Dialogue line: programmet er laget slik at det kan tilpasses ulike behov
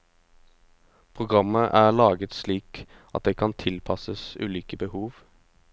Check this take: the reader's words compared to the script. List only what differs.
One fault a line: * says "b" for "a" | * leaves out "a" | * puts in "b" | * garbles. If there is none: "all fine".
all fine